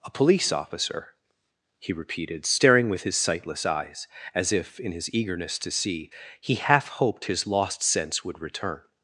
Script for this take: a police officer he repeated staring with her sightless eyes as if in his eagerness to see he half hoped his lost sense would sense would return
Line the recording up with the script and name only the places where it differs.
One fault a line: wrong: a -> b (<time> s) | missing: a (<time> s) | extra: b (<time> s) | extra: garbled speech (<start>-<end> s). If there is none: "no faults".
wrong: her -> his (3.0 s)
missing: sense would (8.4 s)